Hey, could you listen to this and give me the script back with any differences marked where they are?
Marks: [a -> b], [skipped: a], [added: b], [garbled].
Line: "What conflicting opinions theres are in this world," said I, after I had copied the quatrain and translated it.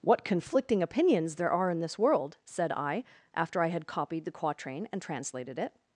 "What conflicting opinions [theres -> there] are in this world," said I, after I had copied the quatrain and translated it.